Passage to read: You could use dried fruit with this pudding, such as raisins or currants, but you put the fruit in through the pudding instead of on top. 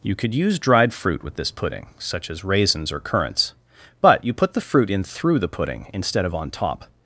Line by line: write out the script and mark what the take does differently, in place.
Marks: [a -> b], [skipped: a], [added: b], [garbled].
You could use dried fruit with this pudding, such as raisins or currants, but you put the fruit in through the pudding instead of on top.